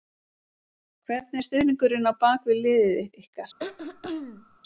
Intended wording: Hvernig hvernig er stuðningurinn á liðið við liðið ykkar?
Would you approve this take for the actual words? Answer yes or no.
no